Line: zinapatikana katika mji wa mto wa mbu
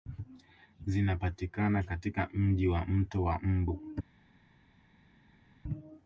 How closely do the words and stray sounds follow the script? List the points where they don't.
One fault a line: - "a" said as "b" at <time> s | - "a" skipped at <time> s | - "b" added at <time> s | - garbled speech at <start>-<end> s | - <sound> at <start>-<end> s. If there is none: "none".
none